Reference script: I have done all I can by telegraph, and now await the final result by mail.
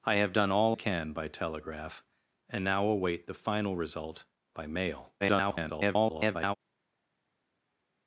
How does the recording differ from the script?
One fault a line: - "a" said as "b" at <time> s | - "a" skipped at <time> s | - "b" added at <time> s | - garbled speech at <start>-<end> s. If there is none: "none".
- "I" skipped at 0.8 s
- garbled speech at 5.2-6.5 s